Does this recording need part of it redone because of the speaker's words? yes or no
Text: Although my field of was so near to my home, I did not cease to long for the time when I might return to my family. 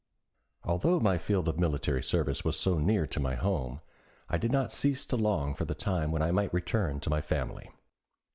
yes